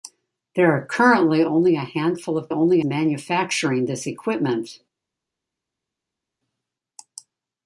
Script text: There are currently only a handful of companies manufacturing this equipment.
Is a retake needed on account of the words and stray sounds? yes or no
yes